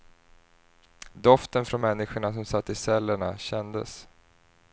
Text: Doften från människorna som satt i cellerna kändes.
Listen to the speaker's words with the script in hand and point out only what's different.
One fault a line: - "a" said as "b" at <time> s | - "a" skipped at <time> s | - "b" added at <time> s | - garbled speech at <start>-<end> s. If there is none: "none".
none